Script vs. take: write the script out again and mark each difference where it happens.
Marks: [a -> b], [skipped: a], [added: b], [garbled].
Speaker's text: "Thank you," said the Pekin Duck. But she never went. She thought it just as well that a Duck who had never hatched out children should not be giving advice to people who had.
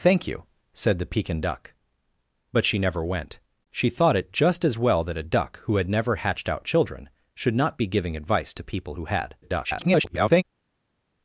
"Thank you," said the Pekin Duck. But she never went. She thought it just as well that a Duck who had never hatched out children should not be giving advice to people who had. [garbled]